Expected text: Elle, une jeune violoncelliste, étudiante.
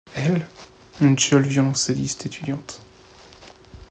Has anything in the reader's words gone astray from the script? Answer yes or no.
no